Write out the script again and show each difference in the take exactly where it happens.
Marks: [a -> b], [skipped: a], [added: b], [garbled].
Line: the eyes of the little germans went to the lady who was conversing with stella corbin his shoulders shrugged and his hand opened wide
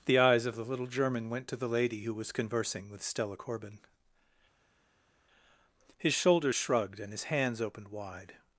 the eyes of the little [germans -> german] went to the lady who was conversing with stella corbin his shoulders shrugged and his [hand -> hands] opened wide